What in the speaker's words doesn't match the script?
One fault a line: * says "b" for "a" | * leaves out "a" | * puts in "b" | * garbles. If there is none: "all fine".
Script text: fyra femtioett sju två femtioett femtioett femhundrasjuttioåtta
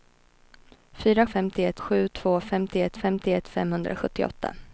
all fine